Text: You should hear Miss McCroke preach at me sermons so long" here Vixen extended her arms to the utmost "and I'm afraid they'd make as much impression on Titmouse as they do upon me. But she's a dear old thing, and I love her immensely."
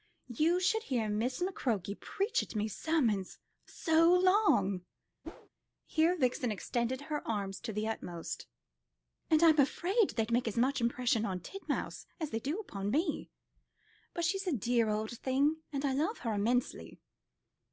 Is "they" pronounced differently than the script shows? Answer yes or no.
no